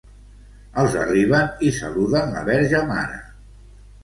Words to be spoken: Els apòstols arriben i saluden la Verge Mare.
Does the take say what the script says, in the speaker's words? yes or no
no